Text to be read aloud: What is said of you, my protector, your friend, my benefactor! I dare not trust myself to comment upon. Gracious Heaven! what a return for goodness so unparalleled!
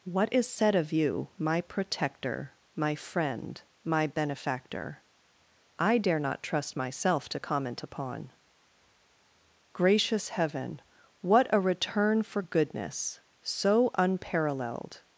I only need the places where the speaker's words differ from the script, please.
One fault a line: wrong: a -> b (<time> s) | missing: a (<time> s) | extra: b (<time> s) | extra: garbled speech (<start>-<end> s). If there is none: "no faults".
wrong: your -> my (2.8 s)